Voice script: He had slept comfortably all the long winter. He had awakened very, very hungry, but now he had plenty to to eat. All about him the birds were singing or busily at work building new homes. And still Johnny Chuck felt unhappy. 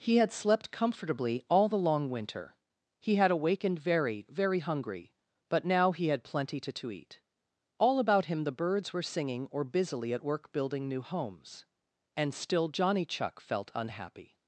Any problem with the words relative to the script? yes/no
no